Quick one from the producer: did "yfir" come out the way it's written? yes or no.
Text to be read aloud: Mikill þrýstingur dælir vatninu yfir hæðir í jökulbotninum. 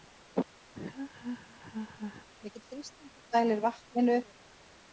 no